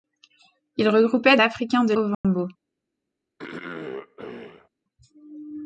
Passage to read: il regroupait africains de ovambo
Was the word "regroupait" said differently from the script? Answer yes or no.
no